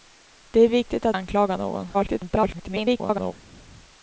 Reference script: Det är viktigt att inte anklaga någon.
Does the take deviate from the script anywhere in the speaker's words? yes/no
yes